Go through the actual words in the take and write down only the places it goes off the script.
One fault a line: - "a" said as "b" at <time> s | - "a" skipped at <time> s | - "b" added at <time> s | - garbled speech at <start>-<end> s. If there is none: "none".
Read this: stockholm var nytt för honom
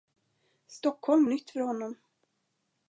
- "var" skipped at 1.2 s